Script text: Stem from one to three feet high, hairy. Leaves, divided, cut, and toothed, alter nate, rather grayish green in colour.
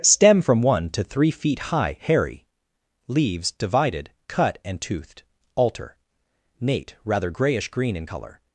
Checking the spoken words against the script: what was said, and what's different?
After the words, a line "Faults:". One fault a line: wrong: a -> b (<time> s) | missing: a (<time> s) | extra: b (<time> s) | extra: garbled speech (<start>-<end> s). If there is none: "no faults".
Stem from one to three feet high, hairy. Leaves, divided, cut, and toothed, alter nate, rather grayish green in colour.
Faults:
no faults